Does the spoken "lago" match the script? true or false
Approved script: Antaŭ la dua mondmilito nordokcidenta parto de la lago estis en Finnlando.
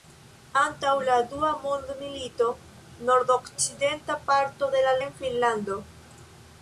false